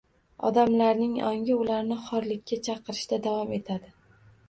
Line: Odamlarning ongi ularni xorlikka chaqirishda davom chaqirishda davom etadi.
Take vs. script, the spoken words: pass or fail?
fail